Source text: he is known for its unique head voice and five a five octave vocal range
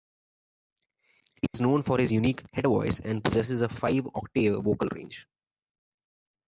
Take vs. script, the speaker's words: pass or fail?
fail